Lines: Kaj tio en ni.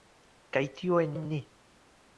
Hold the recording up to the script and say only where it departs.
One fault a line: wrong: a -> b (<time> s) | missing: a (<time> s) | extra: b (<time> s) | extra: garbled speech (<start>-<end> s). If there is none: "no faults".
extra: en (1.1 s)